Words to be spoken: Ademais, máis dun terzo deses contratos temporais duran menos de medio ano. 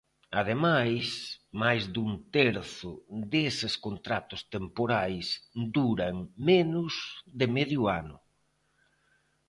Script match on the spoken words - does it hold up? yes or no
yes